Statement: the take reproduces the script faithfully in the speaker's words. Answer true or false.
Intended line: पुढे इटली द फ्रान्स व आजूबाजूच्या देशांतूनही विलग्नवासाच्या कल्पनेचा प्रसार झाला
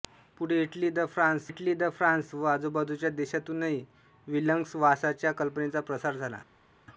false